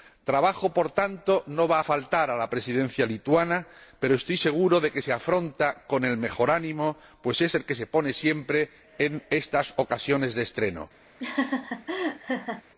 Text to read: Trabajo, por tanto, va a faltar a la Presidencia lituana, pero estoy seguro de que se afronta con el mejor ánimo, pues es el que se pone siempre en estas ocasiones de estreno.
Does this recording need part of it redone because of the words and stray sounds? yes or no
yes